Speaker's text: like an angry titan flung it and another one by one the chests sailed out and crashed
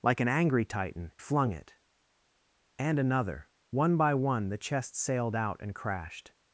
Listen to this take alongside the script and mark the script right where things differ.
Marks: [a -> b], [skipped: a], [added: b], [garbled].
like an angry titan flung it and another one by one the chests sailed out and crashed